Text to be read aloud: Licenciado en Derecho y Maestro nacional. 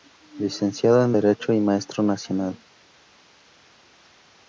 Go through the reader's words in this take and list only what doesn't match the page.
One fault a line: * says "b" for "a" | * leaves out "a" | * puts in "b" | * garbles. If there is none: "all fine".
all fine